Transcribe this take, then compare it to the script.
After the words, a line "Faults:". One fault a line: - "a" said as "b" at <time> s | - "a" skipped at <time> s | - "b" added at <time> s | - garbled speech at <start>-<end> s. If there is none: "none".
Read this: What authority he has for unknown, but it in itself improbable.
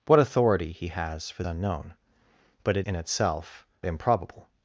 What authority he has for unknown, but it in itself improbable.
Faults:
none